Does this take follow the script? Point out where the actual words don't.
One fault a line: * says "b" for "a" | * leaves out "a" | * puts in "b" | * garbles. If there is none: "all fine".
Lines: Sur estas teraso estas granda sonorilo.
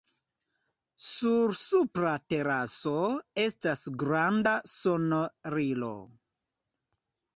* says "supra" for "estas"